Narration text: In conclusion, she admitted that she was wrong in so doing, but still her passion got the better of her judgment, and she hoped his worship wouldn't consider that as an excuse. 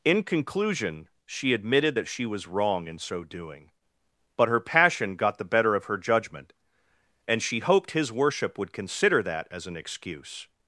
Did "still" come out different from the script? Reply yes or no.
yes